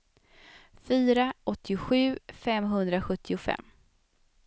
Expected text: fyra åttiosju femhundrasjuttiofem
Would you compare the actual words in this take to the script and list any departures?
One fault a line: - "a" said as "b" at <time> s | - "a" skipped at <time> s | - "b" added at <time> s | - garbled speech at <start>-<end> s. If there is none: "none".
none